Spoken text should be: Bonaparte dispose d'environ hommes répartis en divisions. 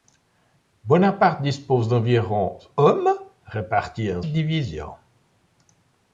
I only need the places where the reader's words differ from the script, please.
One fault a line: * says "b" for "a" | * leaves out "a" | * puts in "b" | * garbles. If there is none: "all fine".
all fine